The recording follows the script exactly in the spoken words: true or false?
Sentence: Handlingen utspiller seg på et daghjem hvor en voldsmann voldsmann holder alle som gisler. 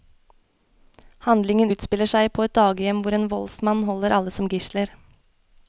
false